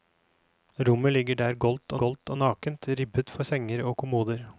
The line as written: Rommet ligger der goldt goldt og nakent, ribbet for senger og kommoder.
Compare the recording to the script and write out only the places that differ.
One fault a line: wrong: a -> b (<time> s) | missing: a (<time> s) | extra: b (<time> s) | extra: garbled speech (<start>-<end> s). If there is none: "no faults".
no faults